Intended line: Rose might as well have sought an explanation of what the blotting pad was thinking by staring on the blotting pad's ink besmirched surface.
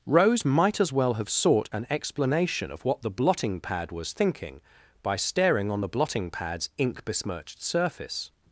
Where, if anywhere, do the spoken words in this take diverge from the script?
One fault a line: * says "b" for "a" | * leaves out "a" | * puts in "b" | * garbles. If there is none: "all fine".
all fine